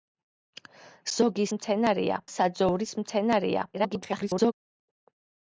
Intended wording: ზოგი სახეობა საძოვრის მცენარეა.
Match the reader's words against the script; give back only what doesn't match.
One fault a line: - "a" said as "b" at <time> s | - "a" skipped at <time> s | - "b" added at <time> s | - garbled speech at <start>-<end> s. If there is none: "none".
- "სახეობა" said as "მცენარეა" at 1.6 s
- garbled speech at 3.7-4.5 s